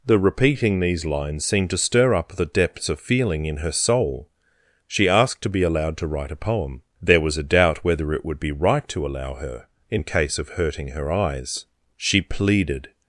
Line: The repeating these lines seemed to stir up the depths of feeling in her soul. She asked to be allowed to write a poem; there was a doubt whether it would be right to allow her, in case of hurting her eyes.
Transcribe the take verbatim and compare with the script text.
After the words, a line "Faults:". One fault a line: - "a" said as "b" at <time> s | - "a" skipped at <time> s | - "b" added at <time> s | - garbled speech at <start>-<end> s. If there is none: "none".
The repeating these lines seemed to stir up the depths of feeling in her soul. She asked to be allowed to write a poem; there was a doubt whether it would be right to allow her, in case of hurting her eyes. She pleaded
Faults:
- "She pleaded" added at 12.0 s